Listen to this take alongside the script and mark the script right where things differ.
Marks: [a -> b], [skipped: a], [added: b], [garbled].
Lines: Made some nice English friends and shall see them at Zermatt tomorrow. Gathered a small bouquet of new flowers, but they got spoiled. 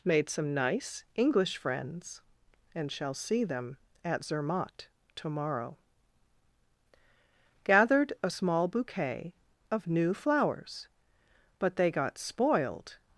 Made some nice English friends and shall see them at Zermatt tomorrow. Gathered a small bouquet of new flowers, but they got spoiled.